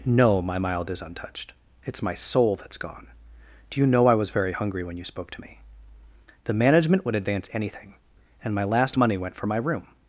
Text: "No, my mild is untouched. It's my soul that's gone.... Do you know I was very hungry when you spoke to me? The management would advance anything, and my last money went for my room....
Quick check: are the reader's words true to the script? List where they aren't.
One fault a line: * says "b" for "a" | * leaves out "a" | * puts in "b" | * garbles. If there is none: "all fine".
all fine